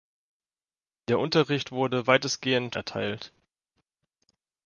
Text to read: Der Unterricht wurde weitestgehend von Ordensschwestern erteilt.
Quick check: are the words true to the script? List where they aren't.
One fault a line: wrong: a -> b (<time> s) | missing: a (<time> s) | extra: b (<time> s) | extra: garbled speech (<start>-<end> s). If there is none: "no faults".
missing: von Ordensschwestern (2.8 s)